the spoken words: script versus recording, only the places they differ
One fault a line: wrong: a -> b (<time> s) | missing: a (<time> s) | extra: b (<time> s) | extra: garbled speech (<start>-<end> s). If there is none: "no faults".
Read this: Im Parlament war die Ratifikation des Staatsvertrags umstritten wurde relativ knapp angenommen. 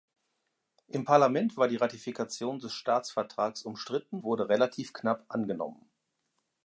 no faults